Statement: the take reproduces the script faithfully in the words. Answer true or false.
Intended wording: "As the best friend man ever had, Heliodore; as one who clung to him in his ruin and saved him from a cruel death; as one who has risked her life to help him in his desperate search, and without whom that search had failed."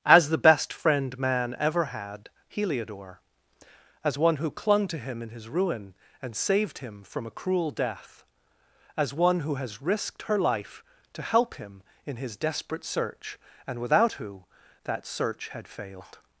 false